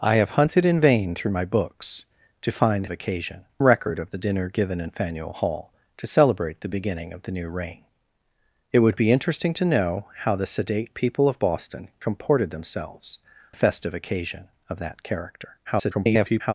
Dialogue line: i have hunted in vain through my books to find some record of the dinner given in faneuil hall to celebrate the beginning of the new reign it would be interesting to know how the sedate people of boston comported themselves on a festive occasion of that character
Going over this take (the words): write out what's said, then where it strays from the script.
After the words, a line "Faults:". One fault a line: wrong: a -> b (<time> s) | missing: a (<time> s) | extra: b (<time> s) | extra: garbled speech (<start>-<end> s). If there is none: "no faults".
i have hunted in vain through my books to find occasion record of the dinner given in faneuil hall to celebrate the beginning of the new reign it would be interesting to know how the sedate people of boston comported themselves a festive occasion of that character [garbled]
Faults:
wrong: some -> occasion (2.9 s)
missing: on (13.2 s)
extra: garbled speech (15.6-16.5 s)